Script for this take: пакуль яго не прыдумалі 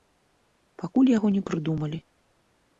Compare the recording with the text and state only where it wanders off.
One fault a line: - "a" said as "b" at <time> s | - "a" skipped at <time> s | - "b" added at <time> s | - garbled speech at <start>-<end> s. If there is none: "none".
none